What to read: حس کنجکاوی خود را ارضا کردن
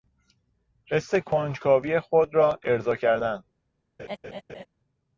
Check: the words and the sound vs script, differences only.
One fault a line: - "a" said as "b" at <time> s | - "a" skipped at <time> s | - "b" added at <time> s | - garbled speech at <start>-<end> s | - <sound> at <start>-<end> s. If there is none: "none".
- laugh at 4.0-4.7 s